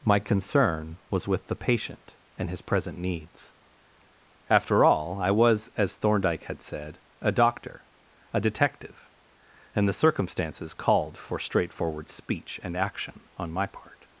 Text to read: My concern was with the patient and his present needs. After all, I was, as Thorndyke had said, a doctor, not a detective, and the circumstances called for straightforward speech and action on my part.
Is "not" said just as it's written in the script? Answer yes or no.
no